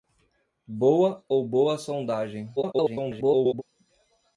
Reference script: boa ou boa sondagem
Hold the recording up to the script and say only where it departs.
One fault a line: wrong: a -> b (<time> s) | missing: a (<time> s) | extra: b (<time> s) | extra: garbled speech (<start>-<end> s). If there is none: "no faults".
extra: garbled speech (2.6-3.6 s)